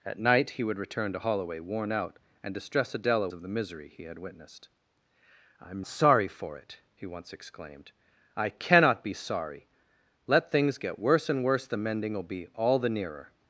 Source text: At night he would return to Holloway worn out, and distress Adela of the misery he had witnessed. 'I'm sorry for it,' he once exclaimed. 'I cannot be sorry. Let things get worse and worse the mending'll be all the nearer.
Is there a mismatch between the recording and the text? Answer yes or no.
no